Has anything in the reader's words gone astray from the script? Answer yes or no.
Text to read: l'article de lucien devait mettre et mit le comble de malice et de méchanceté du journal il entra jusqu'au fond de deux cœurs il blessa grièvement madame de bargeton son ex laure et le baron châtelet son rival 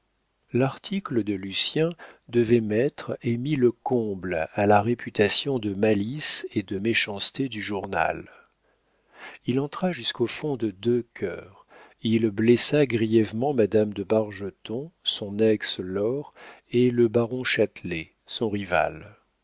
yes